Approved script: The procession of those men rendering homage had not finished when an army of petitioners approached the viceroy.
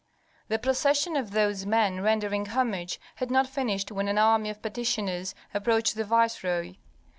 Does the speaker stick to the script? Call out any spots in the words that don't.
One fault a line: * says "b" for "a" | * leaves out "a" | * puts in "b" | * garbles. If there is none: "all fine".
all fine